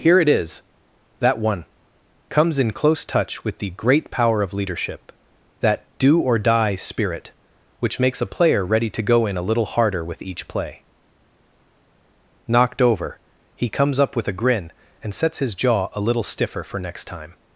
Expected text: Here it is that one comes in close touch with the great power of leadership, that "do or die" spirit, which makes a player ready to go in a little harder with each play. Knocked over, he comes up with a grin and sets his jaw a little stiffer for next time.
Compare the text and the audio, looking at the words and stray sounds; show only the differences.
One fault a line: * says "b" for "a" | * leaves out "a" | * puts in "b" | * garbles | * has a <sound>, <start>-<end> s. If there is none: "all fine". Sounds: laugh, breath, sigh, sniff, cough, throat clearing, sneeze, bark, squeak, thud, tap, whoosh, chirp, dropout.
all fine